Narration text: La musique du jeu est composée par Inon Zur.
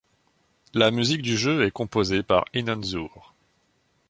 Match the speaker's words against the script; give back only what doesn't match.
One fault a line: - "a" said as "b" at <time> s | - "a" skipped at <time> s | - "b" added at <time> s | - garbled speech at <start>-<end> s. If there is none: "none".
none